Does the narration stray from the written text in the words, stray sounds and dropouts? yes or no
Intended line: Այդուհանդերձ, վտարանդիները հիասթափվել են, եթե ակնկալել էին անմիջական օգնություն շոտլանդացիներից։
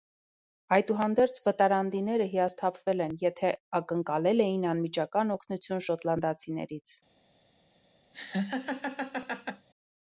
yes